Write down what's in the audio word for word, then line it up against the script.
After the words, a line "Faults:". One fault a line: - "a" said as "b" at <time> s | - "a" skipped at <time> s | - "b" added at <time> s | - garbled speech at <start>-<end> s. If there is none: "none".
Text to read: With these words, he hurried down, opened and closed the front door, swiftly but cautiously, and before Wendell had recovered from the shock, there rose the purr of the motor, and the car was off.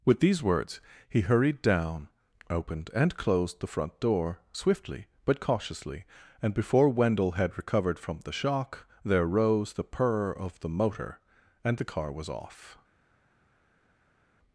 With these words, he hurried down, opened and closed the front door, swiftly but cautiously, and before Wendell had recovered from the shock, there rose the purr of the motor, and the car was off.
Faults:
none